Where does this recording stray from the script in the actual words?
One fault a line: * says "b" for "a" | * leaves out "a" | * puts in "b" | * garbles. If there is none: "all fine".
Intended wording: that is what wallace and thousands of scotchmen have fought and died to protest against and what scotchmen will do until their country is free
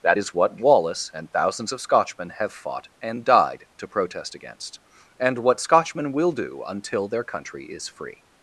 all fine